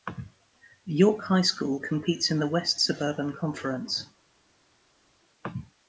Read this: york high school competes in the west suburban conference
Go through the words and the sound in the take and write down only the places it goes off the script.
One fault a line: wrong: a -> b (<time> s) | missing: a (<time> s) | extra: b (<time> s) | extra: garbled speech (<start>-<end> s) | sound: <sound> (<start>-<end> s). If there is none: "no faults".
no faults